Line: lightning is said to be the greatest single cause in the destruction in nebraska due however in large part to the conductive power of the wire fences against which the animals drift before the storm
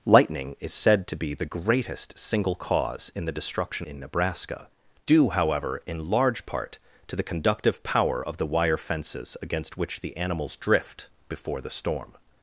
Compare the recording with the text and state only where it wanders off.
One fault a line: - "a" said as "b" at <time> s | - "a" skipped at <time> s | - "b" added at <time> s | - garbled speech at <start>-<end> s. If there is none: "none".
none